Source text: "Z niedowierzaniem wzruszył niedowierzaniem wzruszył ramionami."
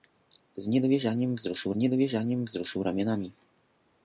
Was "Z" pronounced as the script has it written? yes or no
yes